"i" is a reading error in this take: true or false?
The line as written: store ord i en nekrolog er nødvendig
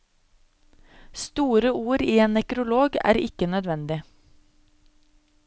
false